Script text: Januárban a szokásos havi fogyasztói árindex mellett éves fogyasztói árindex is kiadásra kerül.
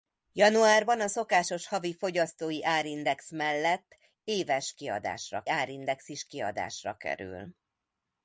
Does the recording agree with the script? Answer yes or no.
no